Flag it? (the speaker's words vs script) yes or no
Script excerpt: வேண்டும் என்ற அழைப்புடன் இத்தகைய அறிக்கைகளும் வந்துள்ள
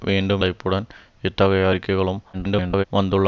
yes